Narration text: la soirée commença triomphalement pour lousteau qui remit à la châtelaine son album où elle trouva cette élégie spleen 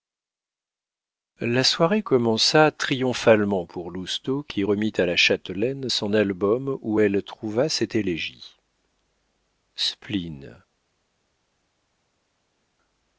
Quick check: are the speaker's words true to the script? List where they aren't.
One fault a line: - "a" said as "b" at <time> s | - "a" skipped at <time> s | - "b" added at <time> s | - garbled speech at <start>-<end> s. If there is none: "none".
none